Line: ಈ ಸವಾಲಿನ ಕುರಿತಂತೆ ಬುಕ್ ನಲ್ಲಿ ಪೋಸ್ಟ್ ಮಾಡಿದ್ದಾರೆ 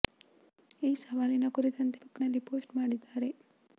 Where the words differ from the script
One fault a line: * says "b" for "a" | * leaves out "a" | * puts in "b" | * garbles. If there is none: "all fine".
all fine